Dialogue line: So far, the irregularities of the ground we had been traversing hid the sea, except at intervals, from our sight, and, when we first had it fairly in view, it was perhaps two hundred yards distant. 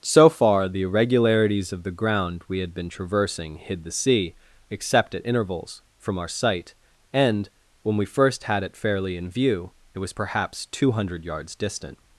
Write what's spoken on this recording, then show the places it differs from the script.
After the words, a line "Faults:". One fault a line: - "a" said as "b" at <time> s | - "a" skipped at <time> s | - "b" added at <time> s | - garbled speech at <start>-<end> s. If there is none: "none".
So far, the irregularities of the ground we had been traversing hid the sea, except at intervals, from our sight, and, when we first had it fairly in view, it was perhaps two hundred yards distant.
Faults:
none